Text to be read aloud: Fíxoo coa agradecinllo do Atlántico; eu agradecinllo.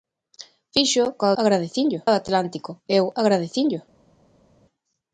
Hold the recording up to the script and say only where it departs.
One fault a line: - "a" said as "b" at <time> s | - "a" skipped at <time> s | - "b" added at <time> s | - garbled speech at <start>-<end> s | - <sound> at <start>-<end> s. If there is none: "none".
none